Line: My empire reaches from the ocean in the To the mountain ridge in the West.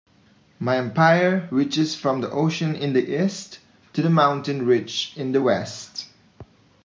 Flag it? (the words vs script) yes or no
yes